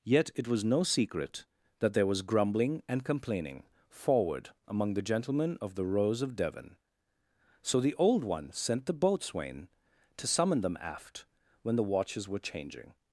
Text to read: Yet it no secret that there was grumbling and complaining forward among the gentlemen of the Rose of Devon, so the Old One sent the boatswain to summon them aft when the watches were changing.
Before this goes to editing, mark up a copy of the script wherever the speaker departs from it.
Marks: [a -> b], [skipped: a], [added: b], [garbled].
Yet it [added: was] no secret that there was grumbling and complaining forward among the gentlemen of the Rose of Devon, so the Old One sent the boatswain to summon them aft when the watches were changing.